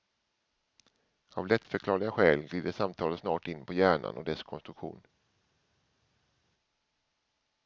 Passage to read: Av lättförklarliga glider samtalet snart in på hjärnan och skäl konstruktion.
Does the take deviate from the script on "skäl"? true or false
true